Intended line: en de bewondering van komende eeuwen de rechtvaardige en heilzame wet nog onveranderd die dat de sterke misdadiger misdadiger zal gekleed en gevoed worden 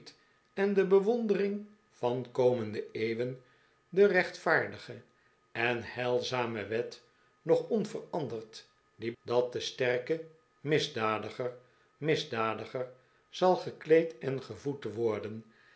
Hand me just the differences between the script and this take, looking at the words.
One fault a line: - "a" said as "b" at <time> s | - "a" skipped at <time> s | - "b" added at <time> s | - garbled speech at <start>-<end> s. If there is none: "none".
none